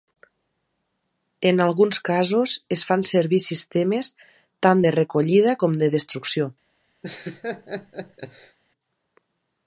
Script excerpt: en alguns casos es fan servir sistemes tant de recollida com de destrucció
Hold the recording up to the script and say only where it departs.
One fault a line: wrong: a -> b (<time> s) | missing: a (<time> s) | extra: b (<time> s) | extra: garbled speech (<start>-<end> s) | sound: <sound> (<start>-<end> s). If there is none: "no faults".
sound: laugh (7.0-8.6 s)